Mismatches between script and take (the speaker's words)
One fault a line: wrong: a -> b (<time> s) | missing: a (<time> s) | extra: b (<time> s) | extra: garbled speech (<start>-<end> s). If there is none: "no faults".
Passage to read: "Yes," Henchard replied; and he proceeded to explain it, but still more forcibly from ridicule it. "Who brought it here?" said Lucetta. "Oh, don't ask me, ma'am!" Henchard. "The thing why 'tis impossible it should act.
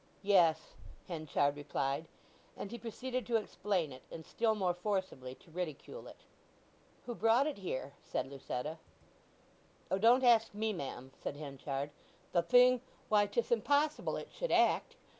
wrong: but -> and (4.1 s)
wrong: from -> to (5.3 s)
extra: said (11.2 s)